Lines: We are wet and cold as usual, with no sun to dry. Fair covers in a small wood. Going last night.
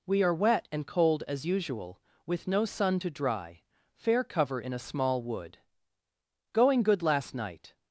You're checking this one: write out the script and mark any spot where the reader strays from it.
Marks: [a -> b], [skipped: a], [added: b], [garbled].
We are wet and cold as usual, with no sun to dry. Fair [covers -> cover] in a small wood. Going [added: good] last night.